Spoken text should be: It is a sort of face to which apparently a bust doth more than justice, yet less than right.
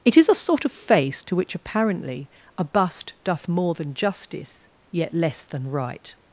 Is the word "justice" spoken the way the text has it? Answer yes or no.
yes